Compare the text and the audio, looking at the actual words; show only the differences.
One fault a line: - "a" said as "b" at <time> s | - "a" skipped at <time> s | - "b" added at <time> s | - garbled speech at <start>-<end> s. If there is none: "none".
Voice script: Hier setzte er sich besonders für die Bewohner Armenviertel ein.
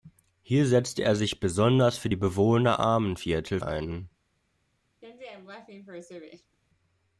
none